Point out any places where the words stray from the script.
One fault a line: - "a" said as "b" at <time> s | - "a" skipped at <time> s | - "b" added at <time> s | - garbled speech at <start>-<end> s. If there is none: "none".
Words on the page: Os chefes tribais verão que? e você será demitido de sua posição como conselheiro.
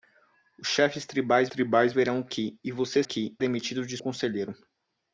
- "tribais" added at 1.5 s
- "será" said as "que" at 3.0 s
- "sua posição como" skipped at 4.0 s